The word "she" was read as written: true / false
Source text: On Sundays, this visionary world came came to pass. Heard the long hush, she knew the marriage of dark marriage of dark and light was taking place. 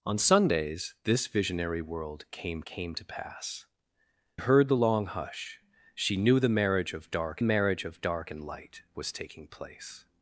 true